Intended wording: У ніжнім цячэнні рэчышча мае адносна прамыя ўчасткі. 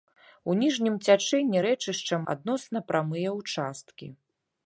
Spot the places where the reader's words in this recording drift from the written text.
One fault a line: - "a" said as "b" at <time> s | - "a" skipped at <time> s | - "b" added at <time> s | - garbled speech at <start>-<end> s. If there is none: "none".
- "мае" skipped at 2.2 s